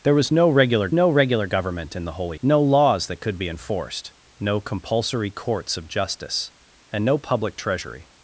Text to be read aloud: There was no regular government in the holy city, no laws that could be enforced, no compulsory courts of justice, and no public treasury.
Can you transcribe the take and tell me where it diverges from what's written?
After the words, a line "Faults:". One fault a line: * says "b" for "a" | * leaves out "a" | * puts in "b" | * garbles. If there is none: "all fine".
There was no regular no regular government in the holy no laws that could be enforced, no compulsory courts of justice, and no public treasury.
Faults:
* puts in "no regular"
* leaves out "city"